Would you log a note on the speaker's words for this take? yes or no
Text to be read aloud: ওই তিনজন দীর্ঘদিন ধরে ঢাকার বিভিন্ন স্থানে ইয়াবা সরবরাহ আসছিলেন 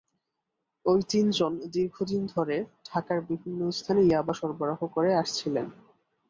yes